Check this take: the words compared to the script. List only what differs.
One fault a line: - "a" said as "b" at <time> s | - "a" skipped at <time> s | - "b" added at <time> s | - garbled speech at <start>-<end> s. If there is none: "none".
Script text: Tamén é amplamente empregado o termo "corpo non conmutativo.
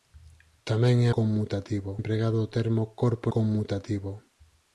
- "amplamente" said as "conmutativo" at 1.2 s
- "non" skipped at 3.3 s